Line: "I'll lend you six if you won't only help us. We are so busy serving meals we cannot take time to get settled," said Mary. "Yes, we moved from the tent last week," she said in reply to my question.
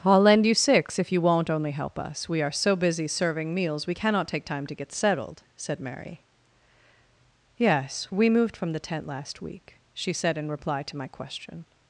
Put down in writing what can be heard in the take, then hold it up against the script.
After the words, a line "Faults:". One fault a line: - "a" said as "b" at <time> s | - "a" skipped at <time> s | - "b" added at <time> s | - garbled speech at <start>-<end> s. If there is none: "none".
"I'll lend you six if you won't only help us. We are so busy serving meals we cannot take time to get settled," said Mary. "Yes, we moved from the tent last week," she said in reply to my question.
Faults:
none